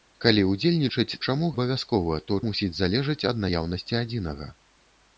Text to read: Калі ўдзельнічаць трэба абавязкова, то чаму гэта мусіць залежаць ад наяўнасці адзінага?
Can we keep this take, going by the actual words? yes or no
no